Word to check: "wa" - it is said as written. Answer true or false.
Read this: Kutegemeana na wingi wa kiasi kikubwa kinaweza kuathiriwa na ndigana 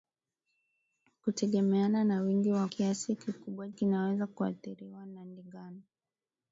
true